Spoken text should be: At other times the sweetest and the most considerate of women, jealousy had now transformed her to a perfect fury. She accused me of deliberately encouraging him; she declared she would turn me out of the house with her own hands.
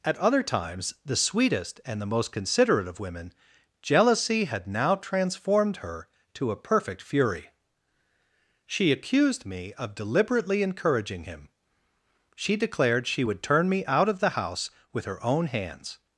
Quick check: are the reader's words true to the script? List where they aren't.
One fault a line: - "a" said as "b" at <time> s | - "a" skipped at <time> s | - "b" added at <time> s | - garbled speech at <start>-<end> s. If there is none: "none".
none